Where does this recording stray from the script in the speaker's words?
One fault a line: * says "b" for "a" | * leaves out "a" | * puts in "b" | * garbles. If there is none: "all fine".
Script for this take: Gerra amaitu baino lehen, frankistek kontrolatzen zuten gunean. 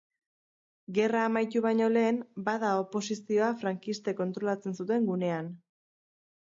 * puts in "bada oposizioa"